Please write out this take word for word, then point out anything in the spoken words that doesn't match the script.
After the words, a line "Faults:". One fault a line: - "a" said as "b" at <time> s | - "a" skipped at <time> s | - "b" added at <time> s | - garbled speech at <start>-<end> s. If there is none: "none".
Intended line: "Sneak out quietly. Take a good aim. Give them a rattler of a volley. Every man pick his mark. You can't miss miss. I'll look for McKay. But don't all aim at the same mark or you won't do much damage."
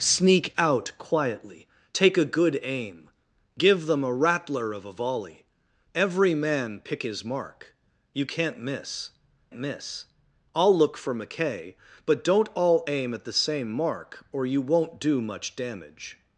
"Sneak out quietly. Take a good aim. Give them a rattler of a volley. Every man pick his mark. You can't miss miss. I'll look for McKay. But don't all aim at the same mark or you won't do much damage."
Faults:
none